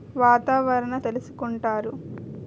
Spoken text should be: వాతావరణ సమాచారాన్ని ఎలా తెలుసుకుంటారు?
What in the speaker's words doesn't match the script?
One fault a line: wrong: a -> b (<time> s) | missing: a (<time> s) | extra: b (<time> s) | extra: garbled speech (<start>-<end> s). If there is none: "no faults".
missing: సమాచారాన్ని ఎలా (0.9 s)